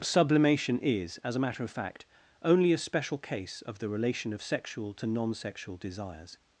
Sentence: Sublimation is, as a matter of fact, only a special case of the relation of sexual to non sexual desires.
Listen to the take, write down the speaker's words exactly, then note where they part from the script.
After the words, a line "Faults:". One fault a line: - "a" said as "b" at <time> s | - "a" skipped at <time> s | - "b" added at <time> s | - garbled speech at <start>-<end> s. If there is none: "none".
Sublimation is, as a matter of fact, only a special case of the relation of sexual to non sexual desires.
Faults:
none